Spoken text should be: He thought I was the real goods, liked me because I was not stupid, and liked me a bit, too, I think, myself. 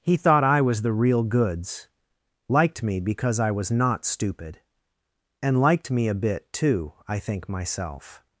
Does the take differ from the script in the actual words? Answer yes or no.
no